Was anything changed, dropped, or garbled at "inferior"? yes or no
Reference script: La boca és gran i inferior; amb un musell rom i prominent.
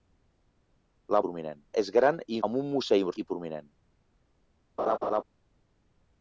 yes